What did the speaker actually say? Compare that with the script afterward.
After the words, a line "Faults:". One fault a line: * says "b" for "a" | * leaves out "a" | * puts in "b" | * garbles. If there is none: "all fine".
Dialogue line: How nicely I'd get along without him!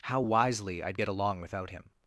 How wisely I'd get along without him!
Faults:
* says "wisely" for "nicely"